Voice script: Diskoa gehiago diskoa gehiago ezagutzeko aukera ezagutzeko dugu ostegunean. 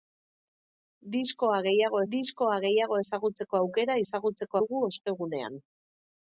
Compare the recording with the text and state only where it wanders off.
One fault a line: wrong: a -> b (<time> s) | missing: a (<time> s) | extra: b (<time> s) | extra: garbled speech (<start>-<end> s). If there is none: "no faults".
no faults